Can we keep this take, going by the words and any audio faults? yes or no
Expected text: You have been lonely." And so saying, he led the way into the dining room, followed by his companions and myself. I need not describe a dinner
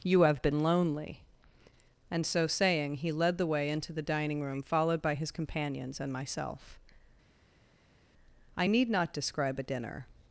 yes